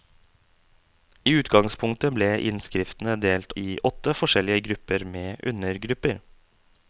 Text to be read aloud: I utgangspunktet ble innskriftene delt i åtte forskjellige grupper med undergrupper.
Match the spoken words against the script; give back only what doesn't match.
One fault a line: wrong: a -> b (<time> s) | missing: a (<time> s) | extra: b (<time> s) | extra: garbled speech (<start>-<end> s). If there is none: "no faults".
no faults